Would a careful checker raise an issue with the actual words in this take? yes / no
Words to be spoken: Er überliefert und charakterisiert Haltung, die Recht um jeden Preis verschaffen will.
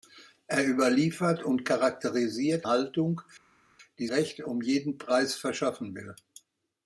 no